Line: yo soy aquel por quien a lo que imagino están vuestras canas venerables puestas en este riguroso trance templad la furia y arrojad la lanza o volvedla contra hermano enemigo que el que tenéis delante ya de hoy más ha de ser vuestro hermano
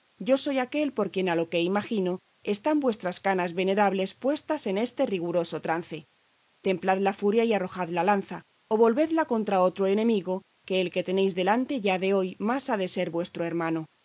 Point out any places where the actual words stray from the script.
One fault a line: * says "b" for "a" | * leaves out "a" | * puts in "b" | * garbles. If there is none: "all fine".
* says "otro" for "hermano"